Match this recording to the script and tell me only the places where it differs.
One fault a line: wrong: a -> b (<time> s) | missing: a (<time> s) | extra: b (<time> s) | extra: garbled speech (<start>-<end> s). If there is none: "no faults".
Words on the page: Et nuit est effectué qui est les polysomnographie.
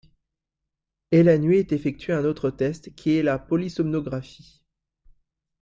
extra: la (1.2 s)
extra: un autre test (2.1 s)
wrong: les -> la (3.2 s)